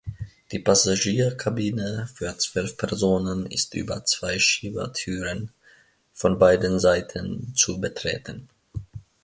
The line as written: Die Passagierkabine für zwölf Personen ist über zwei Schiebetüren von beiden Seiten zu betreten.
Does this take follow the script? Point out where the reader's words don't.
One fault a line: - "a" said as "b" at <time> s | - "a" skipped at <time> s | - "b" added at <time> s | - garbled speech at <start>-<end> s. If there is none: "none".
none